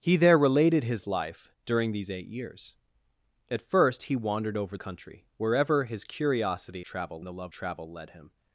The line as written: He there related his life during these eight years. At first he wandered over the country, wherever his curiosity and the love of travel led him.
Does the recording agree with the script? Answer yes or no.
no